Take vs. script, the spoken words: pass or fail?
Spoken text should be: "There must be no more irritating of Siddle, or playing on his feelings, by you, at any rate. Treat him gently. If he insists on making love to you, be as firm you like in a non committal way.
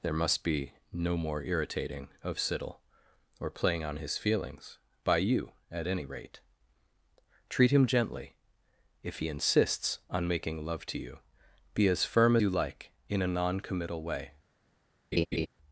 pass